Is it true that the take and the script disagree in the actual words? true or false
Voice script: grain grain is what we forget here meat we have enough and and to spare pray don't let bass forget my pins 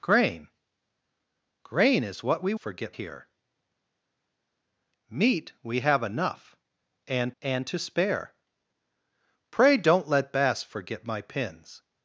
false